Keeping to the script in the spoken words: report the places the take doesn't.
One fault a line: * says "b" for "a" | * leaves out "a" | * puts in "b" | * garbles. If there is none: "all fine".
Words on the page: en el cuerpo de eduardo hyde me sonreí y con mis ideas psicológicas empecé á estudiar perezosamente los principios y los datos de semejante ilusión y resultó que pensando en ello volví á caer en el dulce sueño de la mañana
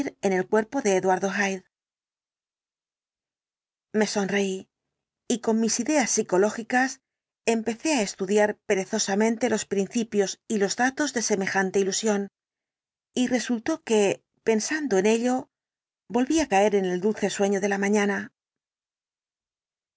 all fine